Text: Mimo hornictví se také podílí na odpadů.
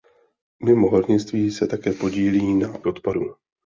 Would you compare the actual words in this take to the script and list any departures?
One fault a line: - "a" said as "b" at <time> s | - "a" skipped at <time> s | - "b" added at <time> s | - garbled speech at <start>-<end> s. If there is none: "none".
none